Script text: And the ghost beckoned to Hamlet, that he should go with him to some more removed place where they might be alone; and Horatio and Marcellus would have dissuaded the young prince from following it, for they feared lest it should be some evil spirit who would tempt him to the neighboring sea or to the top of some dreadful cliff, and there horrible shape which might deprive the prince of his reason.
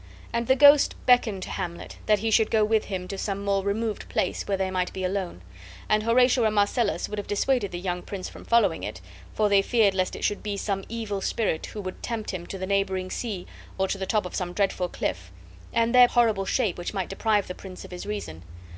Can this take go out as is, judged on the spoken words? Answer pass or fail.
pass